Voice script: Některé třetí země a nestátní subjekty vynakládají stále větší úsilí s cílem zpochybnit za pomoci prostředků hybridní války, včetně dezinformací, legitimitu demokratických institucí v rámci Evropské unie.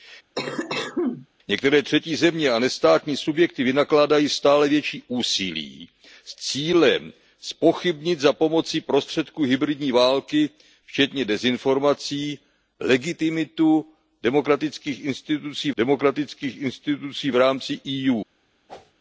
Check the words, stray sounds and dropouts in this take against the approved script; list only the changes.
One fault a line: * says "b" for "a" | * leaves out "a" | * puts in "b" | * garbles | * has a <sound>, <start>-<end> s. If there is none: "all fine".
* has a cough, 0.3-1.3 s
* puts in "demokratických institucí"
* has a whoosh, 18.7-18.9 s